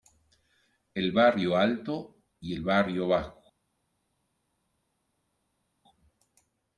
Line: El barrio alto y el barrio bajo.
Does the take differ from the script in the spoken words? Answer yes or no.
no